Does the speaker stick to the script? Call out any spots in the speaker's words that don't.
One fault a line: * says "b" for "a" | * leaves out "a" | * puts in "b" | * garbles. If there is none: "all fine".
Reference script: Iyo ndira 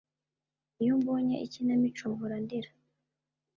* puts in "mbonye ikinamico mpora"